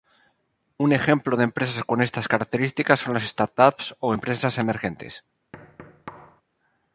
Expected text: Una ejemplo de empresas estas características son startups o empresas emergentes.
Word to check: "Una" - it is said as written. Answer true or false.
false